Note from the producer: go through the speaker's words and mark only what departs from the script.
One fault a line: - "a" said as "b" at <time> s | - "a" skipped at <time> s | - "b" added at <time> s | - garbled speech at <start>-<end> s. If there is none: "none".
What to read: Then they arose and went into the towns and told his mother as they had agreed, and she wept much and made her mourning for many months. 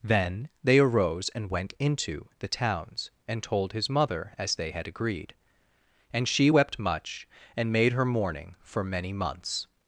none